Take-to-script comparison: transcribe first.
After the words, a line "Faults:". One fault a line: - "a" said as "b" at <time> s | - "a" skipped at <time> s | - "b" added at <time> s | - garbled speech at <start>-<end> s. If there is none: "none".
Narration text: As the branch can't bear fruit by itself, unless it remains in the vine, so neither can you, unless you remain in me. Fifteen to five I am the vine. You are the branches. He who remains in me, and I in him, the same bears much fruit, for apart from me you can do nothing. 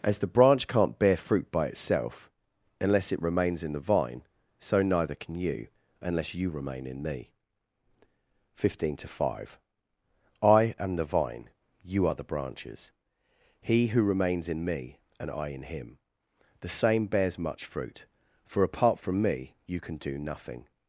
As the branch can't bear fruit by itself, unless it remains in the vine, so neither can you, unless you remain in me. Fifteen to five I am the vine. You are the branches. He who remains in me, and I in him, the same bears much fruit, for apart from me you can do nothing.
Faults:
none